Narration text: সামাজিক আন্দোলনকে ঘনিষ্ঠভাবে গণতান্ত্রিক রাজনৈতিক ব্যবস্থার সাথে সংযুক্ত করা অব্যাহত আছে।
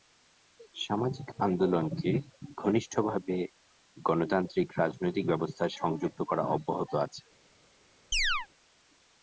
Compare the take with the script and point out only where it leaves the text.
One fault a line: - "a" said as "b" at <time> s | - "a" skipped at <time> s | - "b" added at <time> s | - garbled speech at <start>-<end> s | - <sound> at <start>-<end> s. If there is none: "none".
- "সাথে" skipped at 5.8 s
- chirp at 8.1-8.5 s